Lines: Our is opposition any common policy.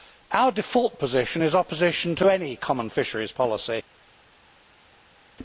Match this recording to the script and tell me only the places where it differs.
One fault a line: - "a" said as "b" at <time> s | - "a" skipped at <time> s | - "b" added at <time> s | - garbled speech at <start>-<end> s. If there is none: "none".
- "default position" added at 0.5 s
- "to" added at 2.2 s
- "fisheries" added at 2.9 s